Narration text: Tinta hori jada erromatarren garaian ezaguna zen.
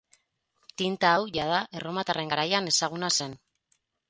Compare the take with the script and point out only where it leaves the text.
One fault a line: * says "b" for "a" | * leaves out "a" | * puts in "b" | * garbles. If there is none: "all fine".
* says "hau" for "hori"